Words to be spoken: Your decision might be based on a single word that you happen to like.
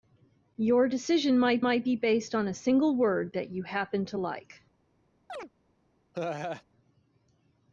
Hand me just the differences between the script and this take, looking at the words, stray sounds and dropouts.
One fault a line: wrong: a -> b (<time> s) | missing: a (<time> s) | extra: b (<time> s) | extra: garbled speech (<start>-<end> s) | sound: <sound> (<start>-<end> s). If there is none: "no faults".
extra: might (1.6 s)
sound: chirp (5.3-5.5 s)
sound: laugh (6.1-6.6 s)